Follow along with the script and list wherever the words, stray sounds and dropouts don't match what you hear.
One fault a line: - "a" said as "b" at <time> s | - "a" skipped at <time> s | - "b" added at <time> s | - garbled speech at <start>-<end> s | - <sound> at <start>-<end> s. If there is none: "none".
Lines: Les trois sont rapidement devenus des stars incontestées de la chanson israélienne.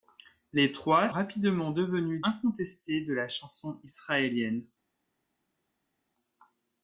- "sont" skipped at 1.1 s
- "des stars" skipped at 2.2 s